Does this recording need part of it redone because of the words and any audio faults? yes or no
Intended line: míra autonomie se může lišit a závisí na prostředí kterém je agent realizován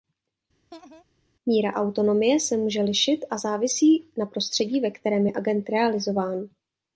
yes